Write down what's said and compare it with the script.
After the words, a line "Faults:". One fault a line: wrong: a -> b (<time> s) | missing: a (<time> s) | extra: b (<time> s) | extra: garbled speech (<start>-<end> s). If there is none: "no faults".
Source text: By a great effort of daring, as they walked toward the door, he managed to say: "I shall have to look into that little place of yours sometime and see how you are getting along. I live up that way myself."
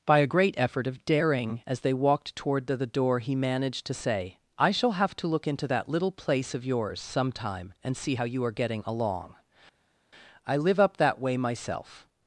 By a great effort of daring, as they walked toward the the door, he managed to say: "I shall have to look into that little place of yours sometime and see how you are getting along. I live up that way myself."
Faults:
extra: the (2.8 s)